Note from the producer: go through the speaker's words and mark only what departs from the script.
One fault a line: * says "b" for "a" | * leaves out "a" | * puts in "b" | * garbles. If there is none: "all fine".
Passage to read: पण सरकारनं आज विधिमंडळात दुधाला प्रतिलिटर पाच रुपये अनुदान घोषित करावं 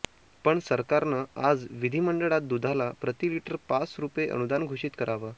all fine